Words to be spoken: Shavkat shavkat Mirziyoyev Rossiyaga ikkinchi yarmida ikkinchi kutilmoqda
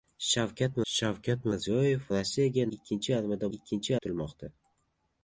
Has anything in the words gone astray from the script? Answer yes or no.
no